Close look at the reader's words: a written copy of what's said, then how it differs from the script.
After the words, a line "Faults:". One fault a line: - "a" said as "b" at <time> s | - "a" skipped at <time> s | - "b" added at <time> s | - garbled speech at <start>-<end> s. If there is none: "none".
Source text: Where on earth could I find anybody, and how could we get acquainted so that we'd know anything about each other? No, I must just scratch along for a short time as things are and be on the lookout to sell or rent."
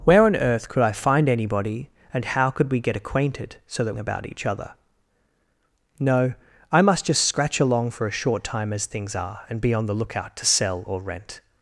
Where on earth could I find anybody, and how could we get acquainted so that about each other? No, I must just scratch along for a short time as things are and be on the lookout to sell or rent."
Faults:
- "we'd know anything" skipped at 4.0 s